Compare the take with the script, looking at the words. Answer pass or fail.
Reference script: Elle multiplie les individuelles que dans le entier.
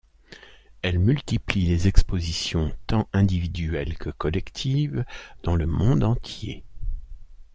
fail